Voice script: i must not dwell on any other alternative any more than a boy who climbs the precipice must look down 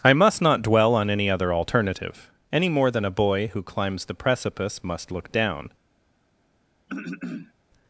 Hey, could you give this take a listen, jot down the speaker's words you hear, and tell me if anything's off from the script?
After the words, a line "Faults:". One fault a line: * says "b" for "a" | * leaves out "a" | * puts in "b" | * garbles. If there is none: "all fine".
i must not dwell on any other alternative any more than a boy who climbs the precipice must look down
Faults:
all fine